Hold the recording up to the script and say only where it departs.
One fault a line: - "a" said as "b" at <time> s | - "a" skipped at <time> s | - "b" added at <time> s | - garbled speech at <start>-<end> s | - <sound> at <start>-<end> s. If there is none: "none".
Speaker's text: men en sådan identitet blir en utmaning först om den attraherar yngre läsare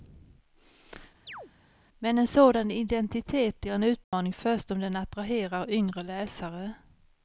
- chirp at 1.3-1.5 s
- dropout at 4.0-4.1 s